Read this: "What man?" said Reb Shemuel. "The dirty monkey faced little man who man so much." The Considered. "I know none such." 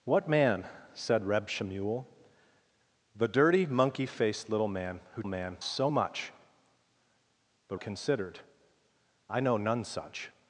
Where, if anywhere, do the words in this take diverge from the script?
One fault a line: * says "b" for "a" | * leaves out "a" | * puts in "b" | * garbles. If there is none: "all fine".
all fine